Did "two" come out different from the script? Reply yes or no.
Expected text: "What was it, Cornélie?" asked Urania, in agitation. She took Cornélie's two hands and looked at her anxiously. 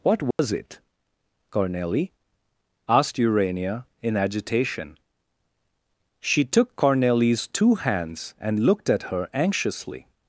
no